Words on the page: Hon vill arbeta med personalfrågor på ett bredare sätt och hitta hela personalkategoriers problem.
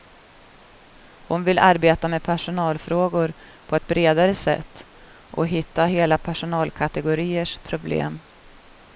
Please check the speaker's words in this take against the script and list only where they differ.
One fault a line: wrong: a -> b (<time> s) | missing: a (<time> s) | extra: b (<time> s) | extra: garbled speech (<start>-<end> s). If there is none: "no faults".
no faults